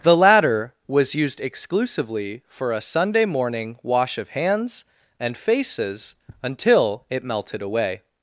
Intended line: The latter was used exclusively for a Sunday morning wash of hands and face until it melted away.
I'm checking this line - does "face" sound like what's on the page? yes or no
no